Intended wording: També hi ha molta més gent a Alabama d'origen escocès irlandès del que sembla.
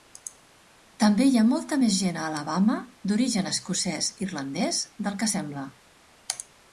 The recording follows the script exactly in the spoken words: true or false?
true